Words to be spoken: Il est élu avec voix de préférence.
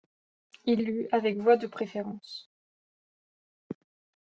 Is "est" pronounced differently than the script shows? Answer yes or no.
yes